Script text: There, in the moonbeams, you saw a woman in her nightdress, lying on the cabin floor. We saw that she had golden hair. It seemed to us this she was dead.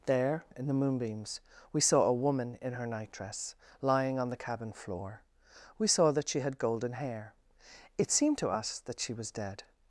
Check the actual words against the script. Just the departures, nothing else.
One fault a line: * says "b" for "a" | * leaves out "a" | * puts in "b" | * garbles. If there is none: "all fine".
* says "we" for "you"
* says "that" for "this"